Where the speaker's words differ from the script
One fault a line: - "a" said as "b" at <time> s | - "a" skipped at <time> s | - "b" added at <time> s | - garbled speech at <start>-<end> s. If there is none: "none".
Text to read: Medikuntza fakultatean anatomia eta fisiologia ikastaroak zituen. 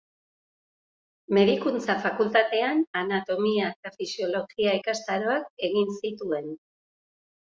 - "egin" added at 5.7 s